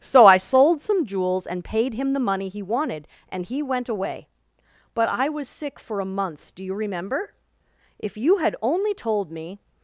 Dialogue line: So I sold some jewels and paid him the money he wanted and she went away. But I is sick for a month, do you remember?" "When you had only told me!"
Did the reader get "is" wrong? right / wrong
wrong